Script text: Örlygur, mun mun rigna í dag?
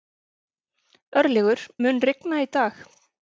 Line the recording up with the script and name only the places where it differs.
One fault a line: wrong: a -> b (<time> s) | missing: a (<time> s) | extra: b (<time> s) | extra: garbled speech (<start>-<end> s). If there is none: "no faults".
missing: mun (2.0 s)